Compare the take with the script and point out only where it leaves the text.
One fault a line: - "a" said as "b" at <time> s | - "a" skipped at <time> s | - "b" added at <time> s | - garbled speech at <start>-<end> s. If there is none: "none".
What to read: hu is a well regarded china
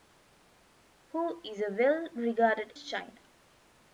none